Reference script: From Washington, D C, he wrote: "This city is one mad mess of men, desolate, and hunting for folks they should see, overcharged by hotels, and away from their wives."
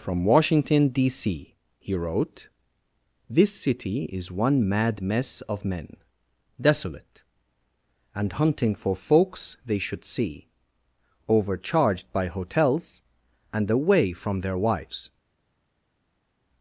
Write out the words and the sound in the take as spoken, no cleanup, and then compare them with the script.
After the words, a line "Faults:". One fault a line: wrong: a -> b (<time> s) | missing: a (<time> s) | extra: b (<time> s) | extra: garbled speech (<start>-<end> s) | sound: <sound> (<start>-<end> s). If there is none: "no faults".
From Washington, D C, he wrote: "This city is one mad mess of men, desolate, and hunting for folks they should see, overcharged by hotels, and away from their wives."
Faults:
no faults